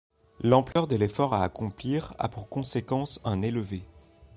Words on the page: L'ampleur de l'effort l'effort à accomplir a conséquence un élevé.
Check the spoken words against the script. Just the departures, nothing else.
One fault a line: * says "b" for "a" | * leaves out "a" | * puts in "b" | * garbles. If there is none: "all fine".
* leaves out "l'effort"
* puts in "pour"